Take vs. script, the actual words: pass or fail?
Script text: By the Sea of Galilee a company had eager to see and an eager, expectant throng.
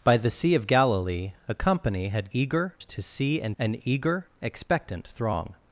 pass